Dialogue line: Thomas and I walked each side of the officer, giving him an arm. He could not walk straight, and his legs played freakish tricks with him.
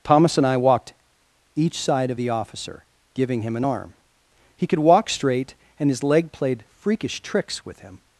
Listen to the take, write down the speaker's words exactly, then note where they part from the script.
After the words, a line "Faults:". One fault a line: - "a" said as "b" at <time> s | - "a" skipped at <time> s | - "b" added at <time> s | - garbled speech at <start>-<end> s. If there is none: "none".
Thomas and I walked each side of the officer, giving him an arm. He could walk straight, and his leg played freakish tricks with him.
Faults:
- "not" skipped at 4.8 s
- "legs" said as "leg" at 6.0 s